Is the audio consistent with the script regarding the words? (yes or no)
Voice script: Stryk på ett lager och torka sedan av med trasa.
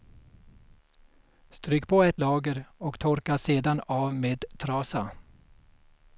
yes